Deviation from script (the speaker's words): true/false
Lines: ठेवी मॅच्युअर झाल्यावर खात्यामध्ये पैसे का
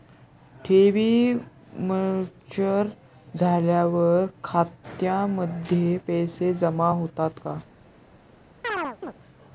true